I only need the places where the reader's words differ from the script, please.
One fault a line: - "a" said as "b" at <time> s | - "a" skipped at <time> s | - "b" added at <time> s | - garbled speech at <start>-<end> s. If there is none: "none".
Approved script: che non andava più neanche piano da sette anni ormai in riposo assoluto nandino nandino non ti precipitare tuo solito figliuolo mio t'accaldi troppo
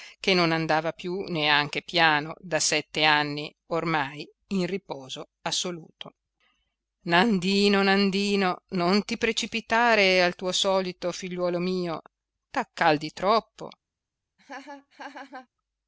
- "al" added at 10.2 s